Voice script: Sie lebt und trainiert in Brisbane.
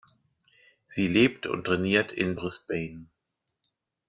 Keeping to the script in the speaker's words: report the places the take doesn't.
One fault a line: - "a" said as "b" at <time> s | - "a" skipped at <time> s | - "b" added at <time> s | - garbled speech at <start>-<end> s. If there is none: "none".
none